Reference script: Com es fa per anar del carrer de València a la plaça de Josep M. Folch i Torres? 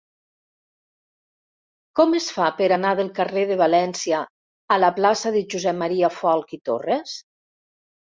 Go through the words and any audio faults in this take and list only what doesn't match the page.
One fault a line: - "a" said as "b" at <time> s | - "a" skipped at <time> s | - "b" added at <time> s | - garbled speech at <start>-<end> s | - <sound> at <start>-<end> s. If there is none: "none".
none